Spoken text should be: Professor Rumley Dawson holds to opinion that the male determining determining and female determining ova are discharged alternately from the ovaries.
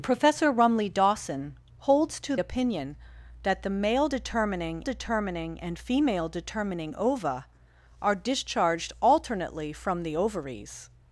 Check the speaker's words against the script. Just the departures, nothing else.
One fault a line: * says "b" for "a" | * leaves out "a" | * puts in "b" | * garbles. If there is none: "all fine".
all fine